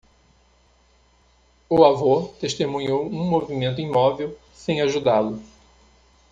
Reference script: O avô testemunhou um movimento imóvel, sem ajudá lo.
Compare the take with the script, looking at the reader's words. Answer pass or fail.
pass